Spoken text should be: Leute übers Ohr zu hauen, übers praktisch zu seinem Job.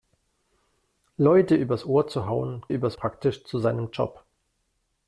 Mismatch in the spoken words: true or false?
false